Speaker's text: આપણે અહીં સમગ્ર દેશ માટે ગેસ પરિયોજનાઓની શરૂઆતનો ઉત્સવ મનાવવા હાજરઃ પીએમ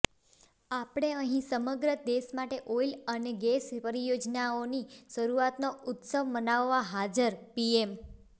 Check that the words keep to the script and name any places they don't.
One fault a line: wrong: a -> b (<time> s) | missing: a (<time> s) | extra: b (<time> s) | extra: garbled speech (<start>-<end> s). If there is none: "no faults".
extra: ઓઇલ અને (2.8 s)